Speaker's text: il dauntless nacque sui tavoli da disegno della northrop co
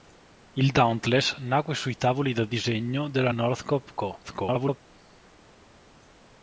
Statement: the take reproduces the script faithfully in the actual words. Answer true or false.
false